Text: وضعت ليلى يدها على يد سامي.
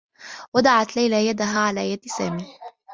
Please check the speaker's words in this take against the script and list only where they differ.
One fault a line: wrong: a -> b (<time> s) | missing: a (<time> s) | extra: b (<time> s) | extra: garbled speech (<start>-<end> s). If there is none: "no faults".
no faults